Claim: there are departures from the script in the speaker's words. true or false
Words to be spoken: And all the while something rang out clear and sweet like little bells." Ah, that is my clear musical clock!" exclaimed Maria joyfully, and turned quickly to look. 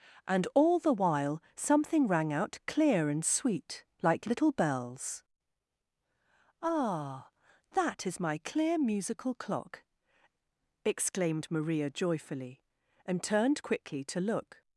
false